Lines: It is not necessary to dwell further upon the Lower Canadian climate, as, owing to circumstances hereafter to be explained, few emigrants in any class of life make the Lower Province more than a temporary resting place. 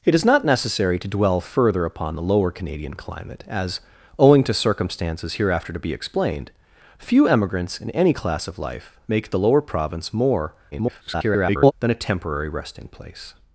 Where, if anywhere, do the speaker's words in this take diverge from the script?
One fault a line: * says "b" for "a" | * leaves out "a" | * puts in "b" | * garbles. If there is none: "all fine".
* garbles